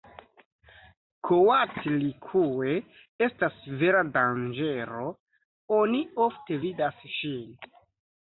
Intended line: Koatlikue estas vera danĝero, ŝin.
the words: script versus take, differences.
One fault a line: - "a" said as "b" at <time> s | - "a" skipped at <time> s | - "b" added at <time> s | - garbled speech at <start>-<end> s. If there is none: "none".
- "oni ofte vidas" added at 5.8 s